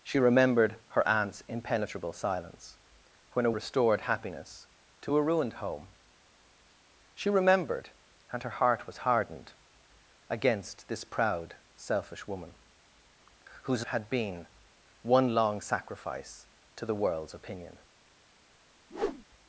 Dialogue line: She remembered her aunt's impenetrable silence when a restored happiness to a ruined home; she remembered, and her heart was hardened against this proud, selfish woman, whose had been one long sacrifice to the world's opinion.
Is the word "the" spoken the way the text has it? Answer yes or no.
yes